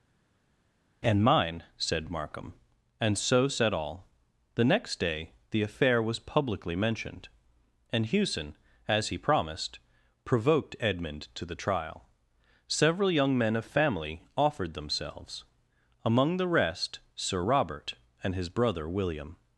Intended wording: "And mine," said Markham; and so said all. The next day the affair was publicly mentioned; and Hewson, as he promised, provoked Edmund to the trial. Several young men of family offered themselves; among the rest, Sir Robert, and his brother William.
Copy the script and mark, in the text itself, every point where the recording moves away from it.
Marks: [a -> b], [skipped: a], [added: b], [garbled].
"And mine," said Markham; and so said all. The next day the affair was publicly mentioned; and Hewson, as he promised, provoked Edmund to the trial. Several young men of family offered themselves; among the rest, Sir Robert, and his brother William.